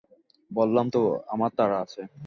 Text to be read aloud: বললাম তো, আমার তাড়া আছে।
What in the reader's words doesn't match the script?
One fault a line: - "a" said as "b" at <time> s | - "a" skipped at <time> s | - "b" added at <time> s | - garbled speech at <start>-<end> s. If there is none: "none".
none